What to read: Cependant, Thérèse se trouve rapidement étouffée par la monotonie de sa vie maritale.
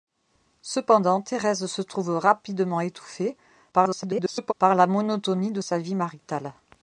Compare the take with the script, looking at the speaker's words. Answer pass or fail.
fail